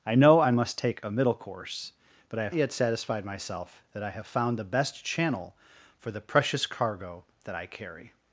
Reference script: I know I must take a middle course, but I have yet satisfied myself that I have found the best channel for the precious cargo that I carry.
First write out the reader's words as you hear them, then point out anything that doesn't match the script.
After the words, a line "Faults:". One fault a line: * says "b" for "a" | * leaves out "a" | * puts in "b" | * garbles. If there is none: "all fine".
I know I must take a middle course, but I have yet satisfied myself that I have found the best channel for the precious cargo that I carry.
Faults:
all fine